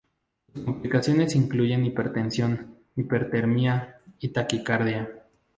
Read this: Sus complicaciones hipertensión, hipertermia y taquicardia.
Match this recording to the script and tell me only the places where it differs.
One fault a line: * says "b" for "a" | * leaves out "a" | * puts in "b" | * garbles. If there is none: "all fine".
* puts in "incluyen"